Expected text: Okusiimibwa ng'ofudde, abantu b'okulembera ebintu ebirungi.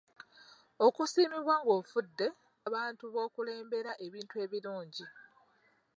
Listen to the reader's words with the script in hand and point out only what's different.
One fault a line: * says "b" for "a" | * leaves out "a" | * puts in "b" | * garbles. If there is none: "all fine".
all fine